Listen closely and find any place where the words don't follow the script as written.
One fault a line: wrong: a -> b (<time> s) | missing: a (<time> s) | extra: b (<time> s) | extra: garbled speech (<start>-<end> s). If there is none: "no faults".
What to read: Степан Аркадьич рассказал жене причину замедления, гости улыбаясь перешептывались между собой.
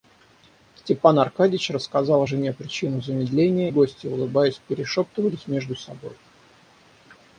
no faults